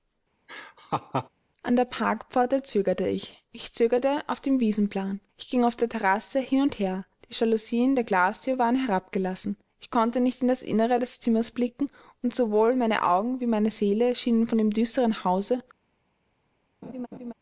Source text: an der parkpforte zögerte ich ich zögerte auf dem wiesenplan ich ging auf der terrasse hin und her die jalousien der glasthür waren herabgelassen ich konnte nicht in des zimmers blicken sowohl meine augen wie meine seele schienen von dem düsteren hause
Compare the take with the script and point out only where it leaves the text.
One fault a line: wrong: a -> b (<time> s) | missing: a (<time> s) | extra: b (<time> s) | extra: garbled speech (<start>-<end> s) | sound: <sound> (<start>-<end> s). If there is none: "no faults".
sound: laugh (0.5-1.3 s)
extra: das innere (10.5 s)
extra: und (12.2 s)
sound: laugh (16.8-17.3 s)